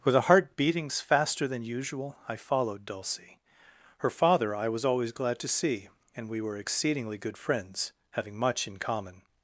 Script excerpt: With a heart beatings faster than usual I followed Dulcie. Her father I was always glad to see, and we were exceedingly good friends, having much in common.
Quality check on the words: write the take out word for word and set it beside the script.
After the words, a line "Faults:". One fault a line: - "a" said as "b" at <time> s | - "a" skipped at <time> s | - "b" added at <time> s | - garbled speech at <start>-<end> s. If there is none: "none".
With a heart beatings faster than usual I followed Dulcie. Her father I was always glad to see, and we were exceedingly good friends, having much in common.
Faults:
none